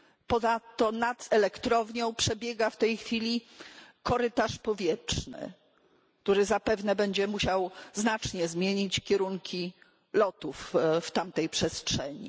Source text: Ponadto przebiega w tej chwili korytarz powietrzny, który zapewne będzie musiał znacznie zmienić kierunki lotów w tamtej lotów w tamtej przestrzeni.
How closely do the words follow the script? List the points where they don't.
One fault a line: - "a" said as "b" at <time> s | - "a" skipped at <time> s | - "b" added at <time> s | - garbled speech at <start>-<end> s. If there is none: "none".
- "nad elektrownią" added at 0.9 s
- "lotów w tamtej" skipped at 11.5 s